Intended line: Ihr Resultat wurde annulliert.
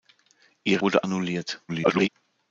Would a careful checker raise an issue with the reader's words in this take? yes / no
yes